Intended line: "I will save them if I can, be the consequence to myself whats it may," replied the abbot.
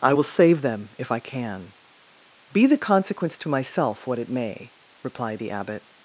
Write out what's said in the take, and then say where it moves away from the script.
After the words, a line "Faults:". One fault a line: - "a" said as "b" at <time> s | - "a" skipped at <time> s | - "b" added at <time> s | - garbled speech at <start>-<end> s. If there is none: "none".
"I will save them if I can, be the consequence to myself what it may," replied the abbot.
Faults:
- "whats" said as "what" at 4.1 s